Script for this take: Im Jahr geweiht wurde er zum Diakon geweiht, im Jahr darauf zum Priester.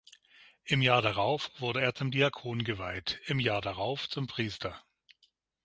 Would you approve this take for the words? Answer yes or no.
no